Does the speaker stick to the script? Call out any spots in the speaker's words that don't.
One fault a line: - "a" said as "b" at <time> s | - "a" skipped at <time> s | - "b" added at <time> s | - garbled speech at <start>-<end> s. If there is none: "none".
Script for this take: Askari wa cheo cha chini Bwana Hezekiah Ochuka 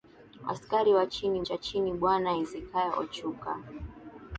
- "cheo" said as "chini" at 1.1 s